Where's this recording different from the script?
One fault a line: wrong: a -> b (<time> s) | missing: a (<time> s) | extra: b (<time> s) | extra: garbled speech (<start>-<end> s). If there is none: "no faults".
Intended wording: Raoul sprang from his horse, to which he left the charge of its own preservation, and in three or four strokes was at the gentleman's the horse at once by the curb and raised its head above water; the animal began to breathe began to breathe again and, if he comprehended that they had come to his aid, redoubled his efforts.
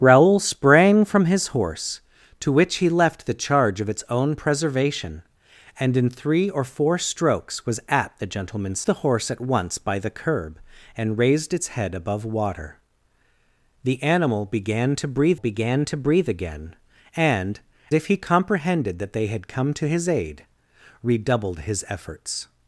no faults